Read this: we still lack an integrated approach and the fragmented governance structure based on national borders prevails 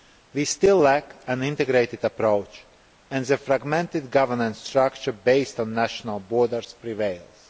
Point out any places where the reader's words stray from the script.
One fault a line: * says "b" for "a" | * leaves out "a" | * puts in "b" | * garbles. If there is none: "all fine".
all fine